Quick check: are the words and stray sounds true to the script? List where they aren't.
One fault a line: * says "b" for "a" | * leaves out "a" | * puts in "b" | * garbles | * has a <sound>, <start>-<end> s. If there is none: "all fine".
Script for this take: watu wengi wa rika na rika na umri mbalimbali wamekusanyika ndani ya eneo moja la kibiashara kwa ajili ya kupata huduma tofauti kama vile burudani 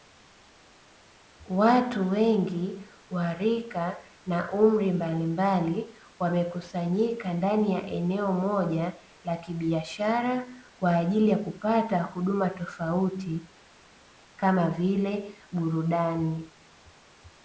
* leaves out "rika na"